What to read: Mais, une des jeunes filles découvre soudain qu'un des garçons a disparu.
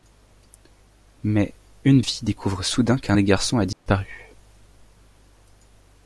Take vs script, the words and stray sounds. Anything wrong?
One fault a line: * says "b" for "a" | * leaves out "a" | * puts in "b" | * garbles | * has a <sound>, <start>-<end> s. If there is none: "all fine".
* leaves out "des jeunes"
* has a dropout, 3.7-3.9 s